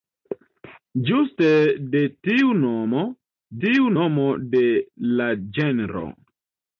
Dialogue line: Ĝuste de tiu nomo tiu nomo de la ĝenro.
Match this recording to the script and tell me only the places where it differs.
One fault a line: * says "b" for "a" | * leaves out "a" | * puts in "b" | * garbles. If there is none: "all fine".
all fine